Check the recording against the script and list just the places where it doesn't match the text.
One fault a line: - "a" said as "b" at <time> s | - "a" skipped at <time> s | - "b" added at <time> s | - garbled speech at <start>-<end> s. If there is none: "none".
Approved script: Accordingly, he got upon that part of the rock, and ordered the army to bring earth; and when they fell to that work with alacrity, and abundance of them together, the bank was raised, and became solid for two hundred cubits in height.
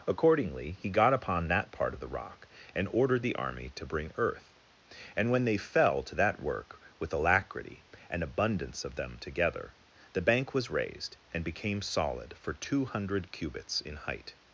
none